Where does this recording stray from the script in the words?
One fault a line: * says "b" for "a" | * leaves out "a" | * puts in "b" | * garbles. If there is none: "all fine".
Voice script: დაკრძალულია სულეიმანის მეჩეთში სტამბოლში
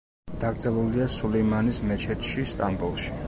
all fine